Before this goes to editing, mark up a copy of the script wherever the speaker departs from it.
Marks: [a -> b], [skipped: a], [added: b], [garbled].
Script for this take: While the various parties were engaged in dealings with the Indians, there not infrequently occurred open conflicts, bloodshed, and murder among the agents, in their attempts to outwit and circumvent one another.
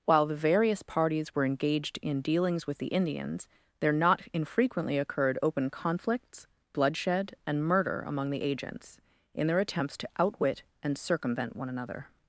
While the various parties were engaged in dealings with the Indians, there not infrequently occurred open conflicts, bloodshed, and murder among the agents, in their attempts to outwit and circumvent one another.